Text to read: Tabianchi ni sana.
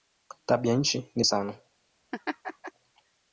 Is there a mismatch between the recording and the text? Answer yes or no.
no